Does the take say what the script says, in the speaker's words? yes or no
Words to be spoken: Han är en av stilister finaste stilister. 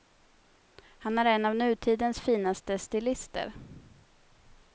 no